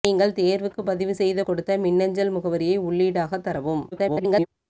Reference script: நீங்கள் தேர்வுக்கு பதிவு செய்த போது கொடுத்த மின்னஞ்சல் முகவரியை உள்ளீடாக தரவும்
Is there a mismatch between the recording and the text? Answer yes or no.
yes